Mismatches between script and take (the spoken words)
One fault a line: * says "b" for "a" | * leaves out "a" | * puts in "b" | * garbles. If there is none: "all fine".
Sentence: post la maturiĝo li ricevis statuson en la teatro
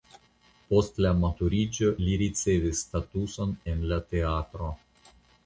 all fine